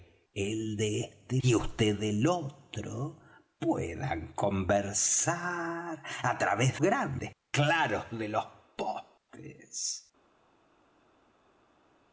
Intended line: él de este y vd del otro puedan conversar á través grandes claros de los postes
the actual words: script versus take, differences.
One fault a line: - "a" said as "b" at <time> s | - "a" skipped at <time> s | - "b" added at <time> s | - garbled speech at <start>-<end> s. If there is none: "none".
none